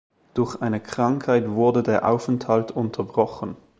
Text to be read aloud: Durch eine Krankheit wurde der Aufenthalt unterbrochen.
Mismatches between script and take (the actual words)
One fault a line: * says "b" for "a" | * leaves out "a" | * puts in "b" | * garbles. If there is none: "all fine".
all fine